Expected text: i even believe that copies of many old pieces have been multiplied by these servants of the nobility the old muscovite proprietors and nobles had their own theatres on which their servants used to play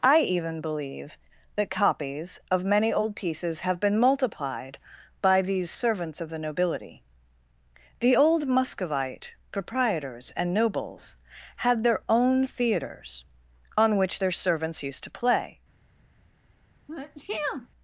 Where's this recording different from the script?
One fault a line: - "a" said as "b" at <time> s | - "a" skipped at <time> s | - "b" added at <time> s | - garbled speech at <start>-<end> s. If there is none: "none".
none